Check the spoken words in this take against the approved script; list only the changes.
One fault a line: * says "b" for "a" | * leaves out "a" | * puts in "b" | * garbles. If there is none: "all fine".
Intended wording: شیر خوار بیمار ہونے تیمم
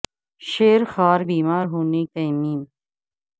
all fine